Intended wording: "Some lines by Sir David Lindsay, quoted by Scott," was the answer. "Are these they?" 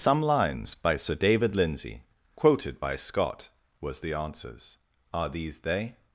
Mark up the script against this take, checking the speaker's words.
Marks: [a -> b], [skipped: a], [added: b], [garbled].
"Some lines by Sir David Lindsay, quoted by Scott," was the [answer. -> answers] "Are these they?"